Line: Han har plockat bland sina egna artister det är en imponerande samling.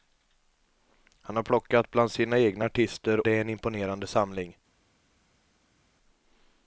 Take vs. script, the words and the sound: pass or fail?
pass